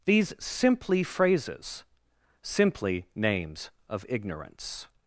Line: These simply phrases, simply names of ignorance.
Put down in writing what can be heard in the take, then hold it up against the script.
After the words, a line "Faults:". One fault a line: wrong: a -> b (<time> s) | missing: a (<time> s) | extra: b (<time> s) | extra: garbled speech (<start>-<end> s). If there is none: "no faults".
These simply phrases, simply names of ignorance.
Faults:
no faults